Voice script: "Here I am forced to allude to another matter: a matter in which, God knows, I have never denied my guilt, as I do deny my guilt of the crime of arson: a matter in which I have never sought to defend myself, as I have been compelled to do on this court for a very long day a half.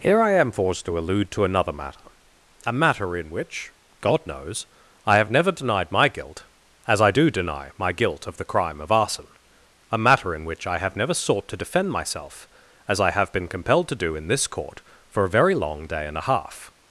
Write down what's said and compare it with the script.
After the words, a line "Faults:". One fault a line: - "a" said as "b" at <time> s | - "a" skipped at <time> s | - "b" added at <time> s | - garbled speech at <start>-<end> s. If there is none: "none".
"Here I am forced to allude to another matter: a matter in which, God knows, I have never denied my guilt, as I do deny my guilt of the crime of arson: a matter in which I have never sought to defend myself, as I have been compelled to do in this court for a very long day and a half.
Faults:
- "on" said as "in" at 14.2 s
- "and" added at 16.1 s